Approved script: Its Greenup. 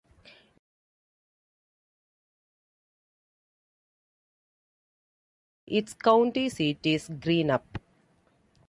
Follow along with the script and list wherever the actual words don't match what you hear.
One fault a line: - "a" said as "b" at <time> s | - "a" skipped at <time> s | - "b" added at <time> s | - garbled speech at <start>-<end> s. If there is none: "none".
- "county seat is" added at 5.9 s